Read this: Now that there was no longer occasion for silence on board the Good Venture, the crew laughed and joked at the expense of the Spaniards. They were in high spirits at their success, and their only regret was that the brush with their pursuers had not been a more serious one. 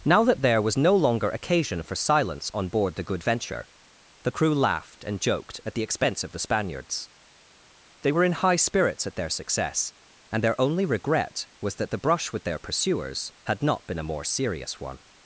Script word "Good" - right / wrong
right